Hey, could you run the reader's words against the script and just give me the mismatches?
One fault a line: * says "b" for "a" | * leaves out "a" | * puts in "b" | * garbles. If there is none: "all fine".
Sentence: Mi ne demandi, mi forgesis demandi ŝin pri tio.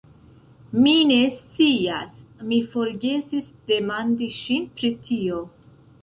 * says "scias" for "demandi"